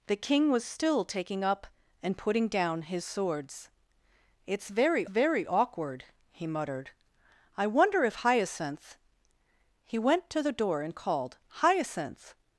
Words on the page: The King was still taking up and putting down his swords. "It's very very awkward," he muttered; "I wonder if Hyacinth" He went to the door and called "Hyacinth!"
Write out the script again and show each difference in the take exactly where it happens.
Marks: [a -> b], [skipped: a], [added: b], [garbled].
The King was still taking up and putting down his swords. "It's very very awkward," he muttered; "I wonder if Hyacinth" He went to the door and called "Hyacinth!"